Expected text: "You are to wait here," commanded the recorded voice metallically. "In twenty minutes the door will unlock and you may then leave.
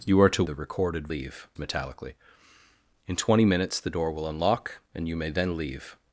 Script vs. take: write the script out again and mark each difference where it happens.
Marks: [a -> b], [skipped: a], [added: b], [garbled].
"You are to [skipped: wait here," commanded] the recorded [voice -> leave] metallically. "In twenty minutes the door will unlock and you may then leave.